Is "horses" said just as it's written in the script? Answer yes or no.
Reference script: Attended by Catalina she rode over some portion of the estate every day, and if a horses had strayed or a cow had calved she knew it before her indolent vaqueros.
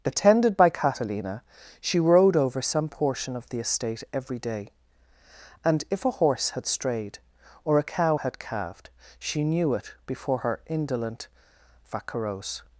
no